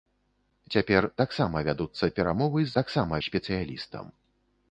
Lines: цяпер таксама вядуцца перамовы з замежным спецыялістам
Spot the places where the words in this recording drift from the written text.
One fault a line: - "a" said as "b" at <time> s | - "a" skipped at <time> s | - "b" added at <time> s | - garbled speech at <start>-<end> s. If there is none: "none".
- "замежным" said as "таксама" at 2.8 s